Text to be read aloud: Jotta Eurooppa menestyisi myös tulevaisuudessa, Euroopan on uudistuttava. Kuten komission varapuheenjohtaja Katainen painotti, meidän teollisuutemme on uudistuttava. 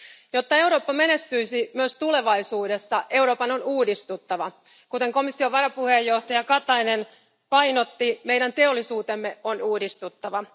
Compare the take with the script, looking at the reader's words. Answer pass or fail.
pass